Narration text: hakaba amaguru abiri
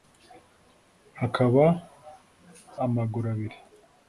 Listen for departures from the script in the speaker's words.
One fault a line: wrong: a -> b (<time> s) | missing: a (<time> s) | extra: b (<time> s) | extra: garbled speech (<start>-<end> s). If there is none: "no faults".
no faults